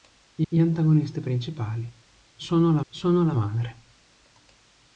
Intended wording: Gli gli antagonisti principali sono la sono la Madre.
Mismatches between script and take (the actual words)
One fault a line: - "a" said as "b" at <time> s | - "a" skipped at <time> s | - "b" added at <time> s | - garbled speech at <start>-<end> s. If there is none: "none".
none